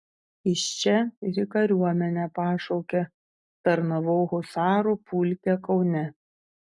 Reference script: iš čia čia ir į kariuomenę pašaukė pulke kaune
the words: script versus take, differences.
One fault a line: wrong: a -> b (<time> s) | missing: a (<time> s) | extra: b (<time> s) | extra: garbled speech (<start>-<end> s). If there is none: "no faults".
missing: čia (0.9 s)
extra: tarnavau husarų (3.7 s)